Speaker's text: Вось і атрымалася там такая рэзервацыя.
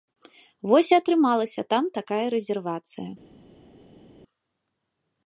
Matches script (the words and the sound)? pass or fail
pass